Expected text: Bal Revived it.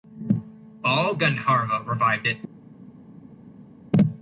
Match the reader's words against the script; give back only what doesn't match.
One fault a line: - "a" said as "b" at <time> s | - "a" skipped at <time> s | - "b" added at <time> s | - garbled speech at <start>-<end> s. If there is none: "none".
- "Gandharva" added at 1.1 s